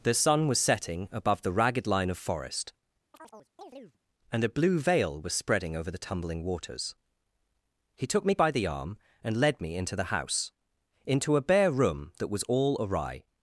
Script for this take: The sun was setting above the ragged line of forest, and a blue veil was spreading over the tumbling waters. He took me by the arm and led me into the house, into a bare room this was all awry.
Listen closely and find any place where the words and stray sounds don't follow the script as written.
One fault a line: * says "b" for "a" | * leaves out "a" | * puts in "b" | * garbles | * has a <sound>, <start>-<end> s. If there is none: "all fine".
* has a chirp, 3.1-4.0 s
* says "that" for "this"